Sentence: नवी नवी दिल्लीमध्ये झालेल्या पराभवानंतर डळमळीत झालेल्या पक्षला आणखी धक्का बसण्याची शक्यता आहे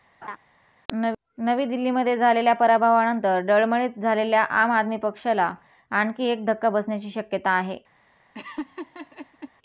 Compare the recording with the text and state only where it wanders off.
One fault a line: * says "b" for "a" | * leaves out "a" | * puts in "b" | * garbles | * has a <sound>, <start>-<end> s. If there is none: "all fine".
* has a laugh, 0.2-0.4 s
* leaves out "नवी"
* puts in "आम आदमी"
* puts in "एक"
* has a laugh, 8.3-9.5 s